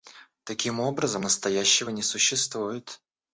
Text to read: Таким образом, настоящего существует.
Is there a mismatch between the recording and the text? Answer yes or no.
yes